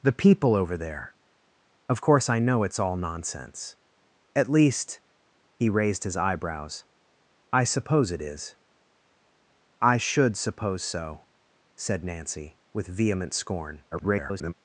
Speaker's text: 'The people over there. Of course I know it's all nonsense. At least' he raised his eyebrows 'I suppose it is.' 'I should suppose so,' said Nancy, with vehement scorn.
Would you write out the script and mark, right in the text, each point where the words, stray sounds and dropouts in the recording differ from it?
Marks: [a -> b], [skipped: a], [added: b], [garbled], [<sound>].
'The people over there. Of course I know it's all nonsense. At least' he raised his eyebrows 'I suppose it is.' 'I should suppose so,' said Nancy, with vehement scorn. [garbled]